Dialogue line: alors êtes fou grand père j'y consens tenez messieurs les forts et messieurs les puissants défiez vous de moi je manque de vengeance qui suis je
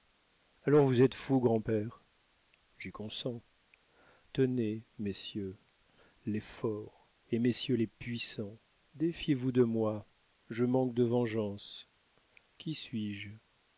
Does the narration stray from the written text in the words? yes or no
yes